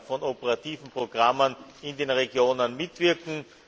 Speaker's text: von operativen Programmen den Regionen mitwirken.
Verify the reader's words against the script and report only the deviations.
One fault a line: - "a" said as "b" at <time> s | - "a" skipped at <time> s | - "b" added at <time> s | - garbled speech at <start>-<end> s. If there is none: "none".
- "in" added at 1.8 s